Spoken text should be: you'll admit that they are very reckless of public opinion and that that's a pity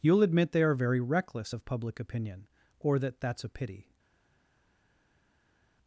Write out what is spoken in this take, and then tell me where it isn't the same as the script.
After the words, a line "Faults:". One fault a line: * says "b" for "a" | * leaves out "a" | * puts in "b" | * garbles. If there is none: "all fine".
you'll admit they are very reckless of public opinion or that that's a pity
Faults:
* leaves out "that"
* says "or" for "and"